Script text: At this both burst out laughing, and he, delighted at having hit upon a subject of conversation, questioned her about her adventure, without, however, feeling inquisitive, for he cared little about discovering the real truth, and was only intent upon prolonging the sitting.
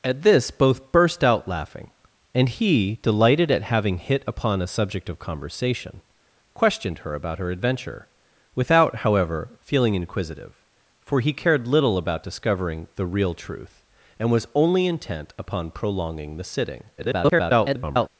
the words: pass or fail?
fail